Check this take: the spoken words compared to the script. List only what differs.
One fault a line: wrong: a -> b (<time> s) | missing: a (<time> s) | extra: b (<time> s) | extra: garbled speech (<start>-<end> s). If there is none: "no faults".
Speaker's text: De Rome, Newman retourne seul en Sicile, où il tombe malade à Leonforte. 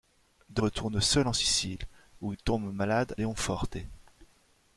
missing: Rome Newman (0.6 s)
missing: à (3.1 s)